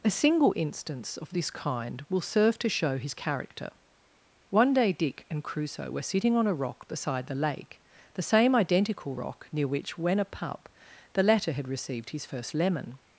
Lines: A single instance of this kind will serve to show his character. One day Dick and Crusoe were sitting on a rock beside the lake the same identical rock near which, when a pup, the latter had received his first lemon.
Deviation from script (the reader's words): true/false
false